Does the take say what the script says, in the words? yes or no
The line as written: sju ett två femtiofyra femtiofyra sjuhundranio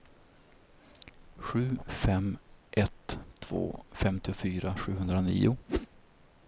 no